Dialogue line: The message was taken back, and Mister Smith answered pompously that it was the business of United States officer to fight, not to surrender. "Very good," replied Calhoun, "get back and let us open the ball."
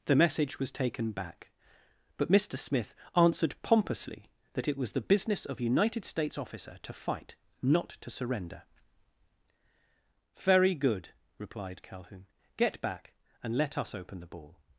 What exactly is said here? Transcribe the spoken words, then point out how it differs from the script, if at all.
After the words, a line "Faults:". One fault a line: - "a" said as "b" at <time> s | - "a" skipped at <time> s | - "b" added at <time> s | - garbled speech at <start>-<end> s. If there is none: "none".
The message was taken back, but Mister Smith answered pompously that it was the business of United States officer to fight, not to surrender. "Very good," replied Calhoun, "get back and let us open the ball."
Faults:
- "and" said as "but" at 2.2 s